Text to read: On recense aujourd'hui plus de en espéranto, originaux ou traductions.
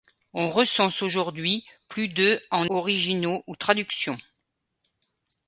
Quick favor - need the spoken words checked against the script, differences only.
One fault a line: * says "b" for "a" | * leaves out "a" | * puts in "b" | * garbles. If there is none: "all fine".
* leaves out "espéranto"